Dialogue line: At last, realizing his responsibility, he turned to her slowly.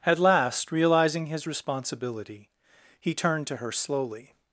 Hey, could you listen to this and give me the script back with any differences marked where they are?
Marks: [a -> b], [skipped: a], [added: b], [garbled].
At last, realizing his responsibility, he turned to her slowly.